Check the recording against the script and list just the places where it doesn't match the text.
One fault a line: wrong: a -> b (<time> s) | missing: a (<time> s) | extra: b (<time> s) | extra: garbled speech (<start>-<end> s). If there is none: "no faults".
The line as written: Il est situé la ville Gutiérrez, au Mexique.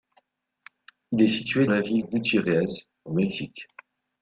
no faults